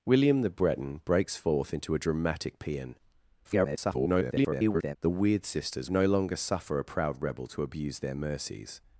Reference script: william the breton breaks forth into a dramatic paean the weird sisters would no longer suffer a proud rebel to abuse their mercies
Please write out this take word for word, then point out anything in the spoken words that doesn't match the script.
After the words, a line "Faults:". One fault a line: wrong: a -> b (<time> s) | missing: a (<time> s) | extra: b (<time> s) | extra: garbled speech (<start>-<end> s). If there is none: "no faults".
william the breton breaks forth into a dramatic paean [garbled] the weird sisters no longer suffer a proud rebel to abuse their mercies
Faults:
extra: garbled speech (3.4-5.0 s)
missing: would (5.9 s)